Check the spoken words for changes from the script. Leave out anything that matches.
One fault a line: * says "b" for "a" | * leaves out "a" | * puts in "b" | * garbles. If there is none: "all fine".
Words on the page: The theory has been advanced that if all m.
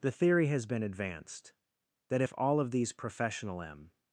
* puts in "of these professional"